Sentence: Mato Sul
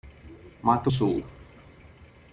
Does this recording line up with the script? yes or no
yes